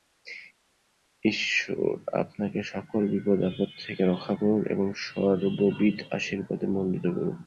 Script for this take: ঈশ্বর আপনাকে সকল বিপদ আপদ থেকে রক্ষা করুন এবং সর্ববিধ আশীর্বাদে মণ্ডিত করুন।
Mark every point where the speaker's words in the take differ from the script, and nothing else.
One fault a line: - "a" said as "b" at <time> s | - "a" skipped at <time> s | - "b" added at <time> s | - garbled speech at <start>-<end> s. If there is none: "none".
none